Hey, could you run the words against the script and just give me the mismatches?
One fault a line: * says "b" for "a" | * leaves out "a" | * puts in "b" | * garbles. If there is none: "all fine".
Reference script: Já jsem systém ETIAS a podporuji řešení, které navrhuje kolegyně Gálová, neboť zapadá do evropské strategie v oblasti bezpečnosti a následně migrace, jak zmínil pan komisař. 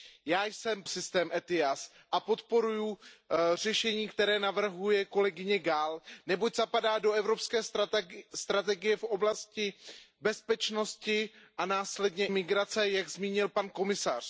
all fine